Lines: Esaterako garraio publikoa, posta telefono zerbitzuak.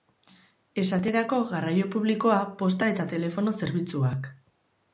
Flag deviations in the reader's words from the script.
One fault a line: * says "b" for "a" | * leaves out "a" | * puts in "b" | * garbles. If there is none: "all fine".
* puts in "eta"